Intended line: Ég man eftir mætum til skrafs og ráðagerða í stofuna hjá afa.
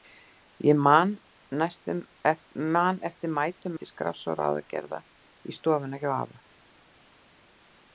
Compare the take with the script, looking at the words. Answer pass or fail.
pass